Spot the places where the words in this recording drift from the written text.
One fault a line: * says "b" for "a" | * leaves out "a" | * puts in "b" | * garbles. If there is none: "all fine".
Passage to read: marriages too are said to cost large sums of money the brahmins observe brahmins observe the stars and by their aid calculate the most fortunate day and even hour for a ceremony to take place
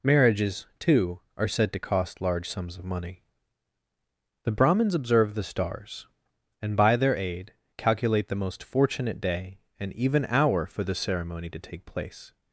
* leaves out "brahmins observe"
* says "the" for "a"